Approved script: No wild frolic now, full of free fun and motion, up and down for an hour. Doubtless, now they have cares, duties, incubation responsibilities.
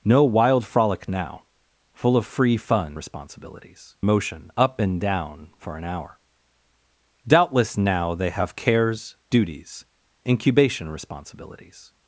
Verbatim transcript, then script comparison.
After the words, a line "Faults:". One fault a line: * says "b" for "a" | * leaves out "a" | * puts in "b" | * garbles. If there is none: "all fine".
No wild frolic now, full of free fun responsibilities motion, up and down for an hour. Doubtless, now they have cares, duties, incubation responsibilities.
Faults:
* says "responsibilities" for "and"